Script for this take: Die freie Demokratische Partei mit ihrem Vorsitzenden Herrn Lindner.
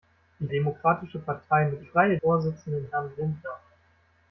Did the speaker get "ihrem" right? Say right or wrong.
wrong